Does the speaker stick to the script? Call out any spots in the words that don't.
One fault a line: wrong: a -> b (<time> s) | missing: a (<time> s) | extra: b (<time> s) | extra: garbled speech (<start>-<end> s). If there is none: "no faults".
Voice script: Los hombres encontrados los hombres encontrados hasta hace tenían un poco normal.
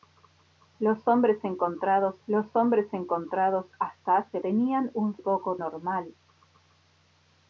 no faults